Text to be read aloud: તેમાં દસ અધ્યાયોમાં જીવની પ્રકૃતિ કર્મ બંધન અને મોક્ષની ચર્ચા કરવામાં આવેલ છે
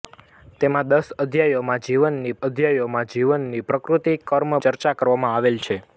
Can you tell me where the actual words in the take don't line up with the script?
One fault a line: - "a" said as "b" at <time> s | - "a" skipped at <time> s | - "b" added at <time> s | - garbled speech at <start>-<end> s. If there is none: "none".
- "અધ્યાયોમાં જીવની" added at 2.4 s
- "બંધન અને મોક્ષની" skipped at 4.6 s